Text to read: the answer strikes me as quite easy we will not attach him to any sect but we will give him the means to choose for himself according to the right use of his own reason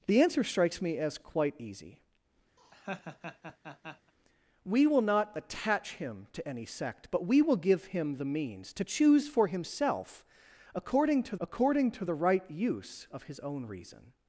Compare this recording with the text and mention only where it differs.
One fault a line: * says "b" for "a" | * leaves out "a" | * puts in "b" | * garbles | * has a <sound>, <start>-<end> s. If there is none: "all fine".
* has a laugh, 2.6-4.1 s
* puts in "according to"